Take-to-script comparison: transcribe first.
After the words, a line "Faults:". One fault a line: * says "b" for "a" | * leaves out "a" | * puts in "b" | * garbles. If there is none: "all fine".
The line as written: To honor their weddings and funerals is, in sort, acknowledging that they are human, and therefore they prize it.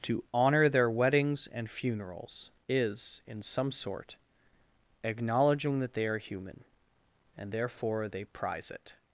To honor their weddings and funerals is, in some sort, acknowledging that they are human, and therefore they prize it.
Faults:
* puts in "some"